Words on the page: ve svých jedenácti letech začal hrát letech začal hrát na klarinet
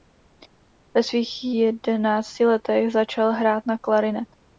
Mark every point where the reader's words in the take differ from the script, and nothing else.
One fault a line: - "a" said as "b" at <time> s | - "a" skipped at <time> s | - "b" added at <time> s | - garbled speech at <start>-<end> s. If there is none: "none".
- "letech začal hrát" skipped at 3.6 s